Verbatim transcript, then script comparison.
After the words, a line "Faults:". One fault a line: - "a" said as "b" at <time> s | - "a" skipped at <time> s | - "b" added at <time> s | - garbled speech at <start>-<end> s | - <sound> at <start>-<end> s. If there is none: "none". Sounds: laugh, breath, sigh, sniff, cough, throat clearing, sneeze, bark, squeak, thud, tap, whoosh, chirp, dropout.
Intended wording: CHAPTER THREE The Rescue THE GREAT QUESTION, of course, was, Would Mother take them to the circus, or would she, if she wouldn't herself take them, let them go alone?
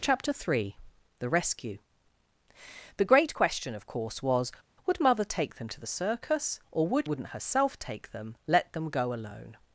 CHAPTER THREE The Rescue THE GREAT QUESTION, of course, was, Would Mother take them to the circus, or would wouldn't herself take them, let them go alone?
Faults:
- "she if she" skipped at 7.1 s